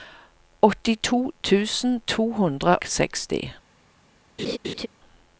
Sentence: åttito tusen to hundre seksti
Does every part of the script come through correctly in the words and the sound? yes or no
no